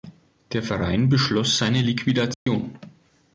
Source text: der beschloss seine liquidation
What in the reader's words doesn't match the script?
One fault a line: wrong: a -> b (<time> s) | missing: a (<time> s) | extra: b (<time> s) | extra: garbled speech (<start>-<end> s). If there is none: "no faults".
extra: verein (0.6 s)